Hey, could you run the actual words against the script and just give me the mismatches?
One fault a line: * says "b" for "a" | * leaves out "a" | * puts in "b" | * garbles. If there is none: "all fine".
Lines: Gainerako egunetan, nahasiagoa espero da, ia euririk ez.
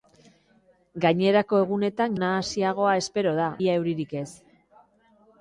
all fine